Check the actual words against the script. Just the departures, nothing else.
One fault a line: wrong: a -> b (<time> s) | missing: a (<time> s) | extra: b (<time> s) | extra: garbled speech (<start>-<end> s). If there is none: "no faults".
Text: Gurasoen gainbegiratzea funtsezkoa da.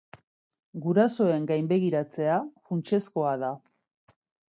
no faults